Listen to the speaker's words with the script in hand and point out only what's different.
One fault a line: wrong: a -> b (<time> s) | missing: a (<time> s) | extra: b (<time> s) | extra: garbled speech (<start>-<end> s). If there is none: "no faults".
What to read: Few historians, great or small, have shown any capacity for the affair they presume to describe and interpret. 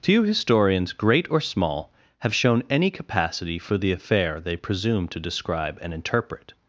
no faults